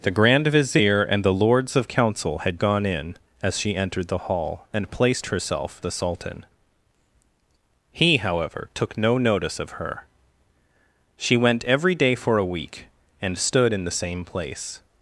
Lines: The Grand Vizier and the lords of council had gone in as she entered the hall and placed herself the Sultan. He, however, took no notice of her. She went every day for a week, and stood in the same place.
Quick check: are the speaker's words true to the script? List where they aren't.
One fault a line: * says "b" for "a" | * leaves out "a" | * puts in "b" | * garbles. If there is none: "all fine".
all fine